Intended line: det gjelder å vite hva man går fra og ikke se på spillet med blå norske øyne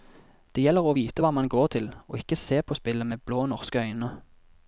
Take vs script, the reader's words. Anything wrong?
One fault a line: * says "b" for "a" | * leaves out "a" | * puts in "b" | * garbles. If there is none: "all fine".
* says "til" for "fra"